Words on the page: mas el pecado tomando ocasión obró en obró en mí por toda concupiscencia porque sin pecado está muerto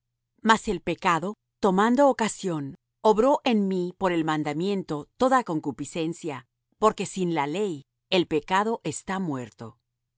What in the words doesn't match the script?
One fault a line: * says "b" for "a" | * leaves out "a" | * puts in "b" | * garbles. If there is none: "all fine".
* says "mí por el mandamiento" for "obró en mí por"
* puts in "la ley el"